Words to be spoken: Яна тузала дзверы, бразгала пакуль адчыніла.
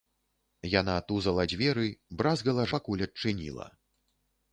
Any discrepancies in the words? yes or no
no